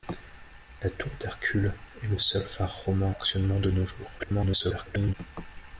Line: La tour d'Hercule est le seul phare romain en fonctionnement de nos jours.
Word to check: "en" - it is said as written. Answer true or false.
false